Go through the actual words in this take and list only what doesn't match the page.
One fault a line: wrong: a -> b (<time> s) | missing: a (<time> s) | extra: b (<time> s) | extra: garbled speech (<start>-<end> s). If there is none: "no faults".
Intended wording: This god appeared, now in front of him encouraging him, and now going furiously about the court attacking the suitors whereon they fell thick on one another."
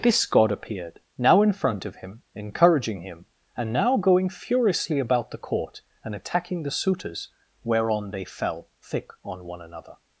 extra: and (6.0 s)